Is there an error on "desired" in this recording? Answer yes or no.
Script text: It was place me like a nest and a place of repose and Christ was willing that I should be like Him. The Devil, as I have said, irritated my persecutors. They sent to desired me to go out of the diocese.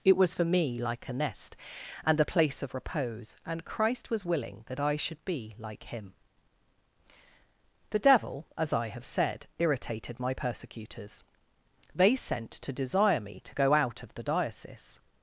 yes